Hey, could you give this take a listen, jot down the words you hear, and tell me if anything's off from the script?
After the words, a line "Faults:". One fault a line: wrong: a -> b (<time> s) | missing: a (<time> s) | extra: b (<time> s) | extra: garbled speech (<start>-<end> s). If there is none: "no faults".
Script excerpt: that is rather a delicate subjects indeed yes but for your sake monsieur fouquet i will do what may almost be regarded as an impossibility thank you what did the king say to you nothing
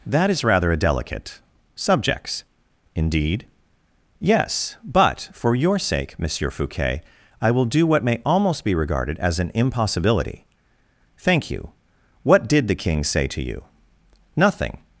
that is rather a delicate subjects indeed yes but for your sake monsieur fouquet i will do what may almost be regarded as an impossibility thank you what did the king say to you nothing
Faults:
no faults